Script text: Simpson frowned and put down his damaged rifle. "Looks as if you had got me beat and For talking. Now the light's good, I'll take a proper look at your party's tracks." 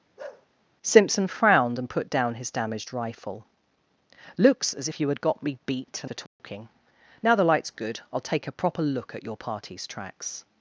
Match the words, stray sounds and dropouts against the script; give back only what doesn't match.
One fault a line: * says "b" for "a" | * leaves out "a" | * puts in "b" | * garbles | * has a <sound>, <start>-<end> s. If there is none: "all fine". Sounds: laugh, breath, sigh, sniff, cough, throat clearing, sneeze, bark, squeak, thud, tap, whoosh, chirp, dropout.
* has a bark, 0.2-0.5 s
* has a dropout, 6.3-6.4 s